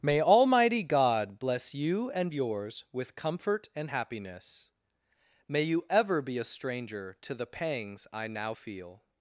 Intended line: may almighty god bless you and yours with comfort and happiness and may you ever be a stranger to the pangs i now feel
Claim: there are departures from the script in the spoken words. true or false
true